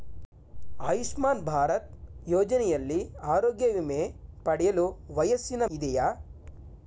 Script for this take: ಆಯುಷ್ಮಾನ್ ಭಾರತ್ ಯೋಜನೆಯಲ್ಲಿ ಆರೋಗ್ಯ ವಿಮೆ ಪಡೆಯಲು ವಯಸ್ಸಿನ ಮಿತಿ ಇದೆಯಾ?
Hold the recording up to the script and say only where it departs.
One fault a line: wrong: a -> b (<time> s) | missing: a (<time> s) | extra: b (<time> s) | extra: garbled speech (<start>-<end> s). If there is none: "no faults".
missing: ಮಿತಿ (5.6 s)